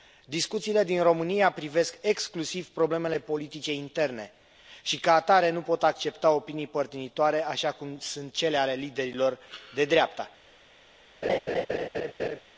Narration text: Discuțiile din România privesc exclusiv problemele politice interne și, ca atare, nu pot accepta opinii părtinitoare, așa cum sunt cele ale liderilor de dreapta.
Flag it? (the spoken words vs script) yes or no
no